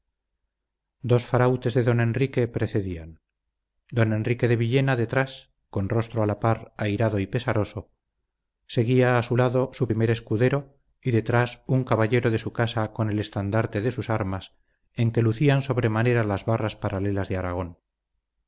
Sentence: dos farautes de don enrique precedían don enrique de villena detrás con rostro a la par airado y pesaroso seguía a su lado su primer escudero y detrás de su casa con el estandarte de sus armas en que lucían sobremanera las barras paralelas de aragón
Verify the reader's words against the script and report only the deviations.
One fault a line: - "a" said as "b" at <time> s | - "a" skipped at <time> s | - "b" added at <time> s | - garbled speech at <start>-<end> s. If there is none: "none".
- "un caballero" added at 11.7 s